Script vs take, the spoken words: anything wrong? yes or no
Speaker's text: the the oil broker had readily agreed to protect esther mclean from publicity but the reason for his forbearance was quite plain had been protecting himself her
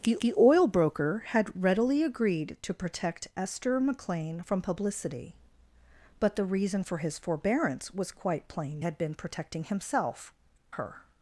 no